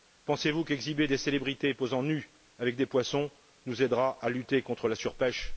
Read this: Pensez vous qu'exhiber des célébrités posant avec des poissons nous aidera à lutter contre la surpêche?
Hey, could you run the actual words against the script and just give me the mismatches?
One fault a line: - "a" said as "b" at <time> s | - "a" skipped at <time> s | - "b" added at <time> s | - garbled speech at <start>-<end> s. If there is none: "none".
- "nues" added at 2.0 s